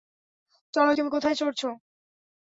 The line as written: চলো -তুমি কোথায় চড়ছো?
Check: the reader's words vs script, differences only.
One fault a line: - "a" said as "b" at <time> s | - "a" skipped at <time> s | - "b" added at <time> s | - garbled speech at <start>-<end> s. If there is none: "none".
none